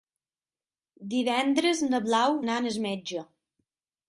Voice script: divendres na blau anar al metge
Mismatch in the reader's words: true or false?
false